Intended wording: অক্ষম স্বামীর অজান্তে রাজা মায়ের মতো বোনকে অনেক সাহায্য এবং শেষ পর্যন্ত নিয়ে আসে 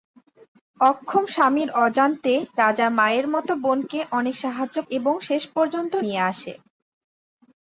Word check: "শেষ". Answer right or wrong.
right